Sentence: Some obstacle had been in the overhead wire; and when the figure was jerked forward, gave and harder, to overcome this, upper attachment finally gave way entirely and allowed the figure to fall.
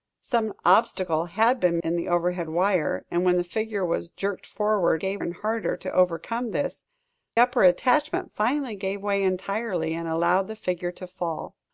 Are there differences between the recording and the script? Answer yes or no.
no